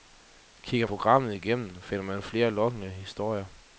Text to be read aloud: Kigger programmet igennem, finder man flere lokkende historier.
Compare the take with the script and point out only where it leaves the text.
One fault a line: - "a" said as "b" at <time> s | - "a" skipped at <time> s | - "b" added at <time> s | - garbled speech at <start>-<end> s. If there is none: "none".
none